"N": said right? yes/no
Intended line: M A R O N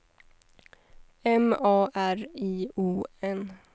yes